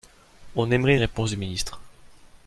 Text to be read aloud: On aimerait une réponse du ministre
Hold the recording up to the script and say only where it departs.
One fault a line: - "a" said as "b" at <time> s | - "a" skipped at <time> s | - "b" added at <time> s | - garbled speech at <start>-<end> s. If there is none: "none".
none